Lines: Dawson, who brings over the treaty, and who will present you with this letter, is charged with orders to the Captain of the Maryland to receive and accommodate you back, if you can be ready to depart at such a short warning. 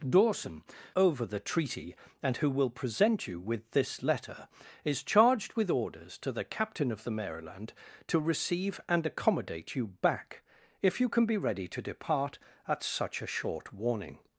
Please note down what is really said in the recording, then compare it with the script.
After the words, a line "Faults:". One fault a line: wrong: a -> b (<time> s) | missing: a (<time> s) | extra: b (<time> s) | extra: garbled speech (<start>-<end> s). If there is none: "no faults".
Dawson, over the treaty, and who will present you with this letter, is charged with orders to the Captain of the Maryland to receive and accommodate you back, if you can be ready to depart at such a short warning.
Faults:
missing: who brings (0.6 s)